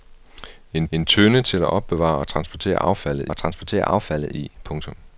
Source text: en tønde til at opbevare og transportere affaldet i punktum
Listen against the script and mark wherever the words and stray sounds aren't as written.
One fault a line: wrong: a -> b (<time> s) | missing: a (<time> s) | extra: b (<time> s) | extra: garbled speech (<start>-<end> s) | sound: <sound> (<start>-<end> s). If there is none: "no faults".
extra: en (0.9 s)
extra: og transportere affaldet (3.3 s)